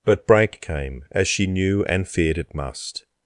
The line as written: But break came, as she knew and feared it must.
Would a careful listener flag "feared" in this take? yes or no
no